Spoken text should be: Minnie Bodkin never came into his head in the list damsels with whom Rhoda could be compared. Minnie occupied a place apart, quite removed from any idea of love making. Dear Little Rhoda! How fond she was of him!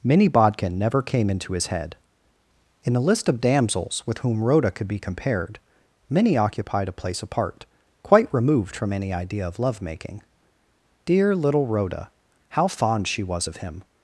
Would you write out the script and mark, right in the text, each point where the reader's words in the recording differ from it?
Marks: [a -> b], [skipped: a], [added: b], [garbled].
Minnie Bodkin never came into his head in the list [added: of] damsels with whom Rhoda could be compared. Minnie occupied a place apart, quite removed from any idea of love making. Dear Little Rhoda! How fond she was of him!